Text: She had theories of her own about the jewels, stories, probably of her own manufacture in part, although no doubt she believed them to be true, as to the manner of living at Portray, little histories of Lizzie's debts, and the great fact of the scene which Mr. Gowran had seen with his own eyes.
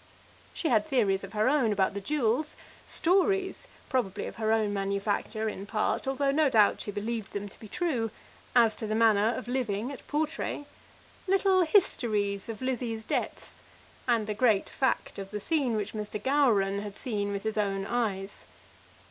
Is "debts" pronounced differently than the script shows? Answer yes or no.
no